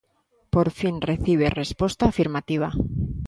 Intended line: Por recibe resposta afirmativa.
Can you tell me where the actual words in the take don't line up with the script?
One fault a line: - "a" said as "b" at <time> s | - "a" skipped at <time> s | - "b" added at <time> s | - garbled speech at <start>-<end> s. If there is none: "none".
- "fin" added at 0.7 s